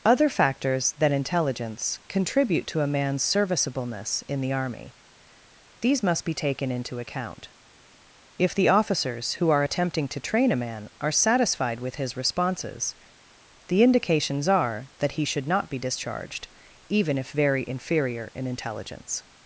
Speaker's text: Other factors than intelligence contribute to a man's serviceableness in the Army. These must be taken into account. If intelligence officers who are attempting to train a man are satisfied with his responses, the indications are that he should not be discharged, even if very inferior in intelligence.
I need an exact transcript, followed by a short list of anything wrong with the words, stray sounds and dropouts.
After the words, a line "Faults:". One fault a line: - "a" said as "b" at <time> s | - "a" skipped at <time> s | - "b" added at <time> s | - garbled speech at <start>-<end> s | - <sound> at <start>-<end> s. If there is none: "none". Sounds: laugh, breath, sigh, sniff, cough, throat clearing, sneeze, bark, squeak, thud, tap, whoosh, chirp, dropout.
Other factors than intelligence contribute to a man's serviceableness in the Army. These must be taken into account. If the officers who are attempting to train a man are satisfied with his responses, the indications are that he should not be discharged, even if very inferior in intelligence.
Faults:
- "intelligence" said as "the" at 8.6 s